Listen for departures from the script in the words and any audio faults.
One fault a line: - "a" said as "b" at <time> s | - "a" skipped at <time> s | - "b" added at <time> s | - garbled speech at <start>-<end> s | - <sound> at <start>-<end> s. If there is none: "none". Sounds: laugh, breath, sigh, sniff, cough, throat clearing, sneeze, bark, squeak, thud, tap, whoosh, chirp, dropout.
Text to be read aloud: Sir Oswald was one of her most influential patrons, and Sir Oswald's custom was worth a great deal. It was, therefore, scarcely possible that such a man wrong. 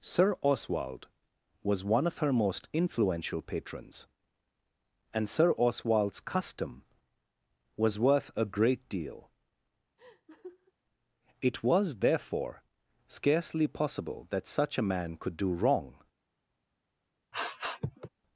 - laugh at 10.0-10.7 s
- "could do" added at 15.2 s
- sniff at 17.3-18.1 s